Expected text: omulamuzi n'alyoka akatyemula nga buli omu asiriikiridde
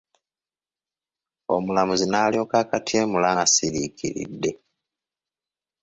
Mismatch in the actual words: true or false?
true